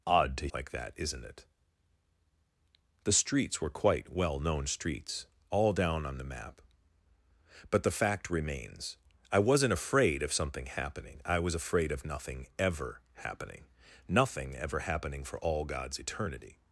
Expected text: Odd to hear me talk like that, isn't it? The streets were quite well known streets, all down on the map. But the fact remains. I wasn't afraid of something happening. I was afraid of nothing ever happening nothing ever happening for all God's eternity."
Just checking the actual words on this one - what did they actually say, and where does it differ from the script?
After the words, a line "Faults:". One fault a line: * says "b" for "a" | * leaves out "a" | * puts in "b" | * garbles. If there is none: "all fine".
Odd to like that, isn't it? The streets were quite well known streets, all down on the map. But the fact remains. I wasn't afraid of something happening. I was afraid of nothing ever happening nothing ever happening for all God's eternity."
Faults:
* leaves out "hear me talk"